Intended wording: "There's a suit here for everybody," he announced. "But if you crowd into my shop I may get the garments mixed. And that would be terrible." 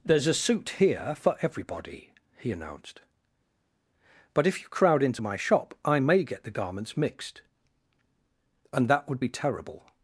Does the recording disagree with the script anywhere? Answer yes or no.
no